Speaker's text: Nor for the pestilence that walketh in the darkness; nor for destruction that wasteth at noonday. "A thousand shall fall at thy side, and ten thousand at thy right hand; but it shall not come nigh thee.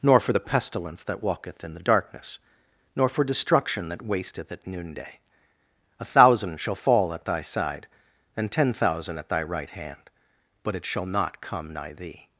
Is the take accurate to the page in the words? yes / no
yes